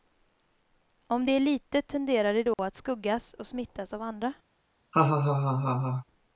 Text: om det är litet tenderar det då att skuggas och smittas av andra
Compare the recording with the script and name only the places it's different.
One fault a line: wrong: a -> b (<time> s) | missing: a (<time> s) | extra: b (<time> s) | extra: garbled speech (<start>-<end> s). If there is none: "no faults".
no faults